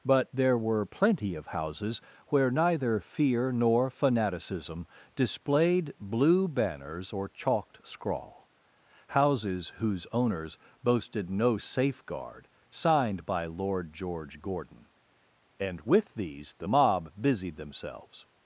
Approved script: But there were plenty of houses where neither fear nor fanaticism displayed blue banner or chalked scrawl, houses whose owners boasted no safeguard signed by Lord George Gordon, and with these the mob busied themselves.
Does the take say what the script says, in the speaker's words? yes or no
no